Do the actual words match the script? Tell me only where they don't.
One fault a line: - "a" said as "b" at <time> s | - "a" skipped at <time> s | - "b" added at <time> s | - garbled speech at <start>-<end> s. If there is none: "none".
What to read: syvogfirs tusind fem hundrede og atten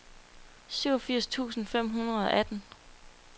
none